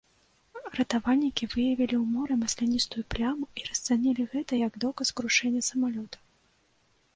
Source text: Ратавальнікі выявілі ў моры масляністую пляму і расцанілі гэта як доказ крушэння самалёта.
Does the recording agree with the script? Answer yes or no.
yes